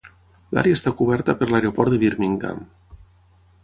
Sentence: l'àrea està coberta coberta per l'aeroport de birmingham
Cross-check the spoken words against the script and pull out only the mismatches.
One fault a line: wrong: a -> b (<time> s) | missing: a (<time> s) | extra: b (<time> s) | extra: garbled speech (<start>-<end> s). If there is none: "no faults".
missing: coberta (1.4 s)